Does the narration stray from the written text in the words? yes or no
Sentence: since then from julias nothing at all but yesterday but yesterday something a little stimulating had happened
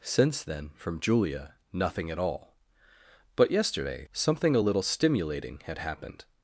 yes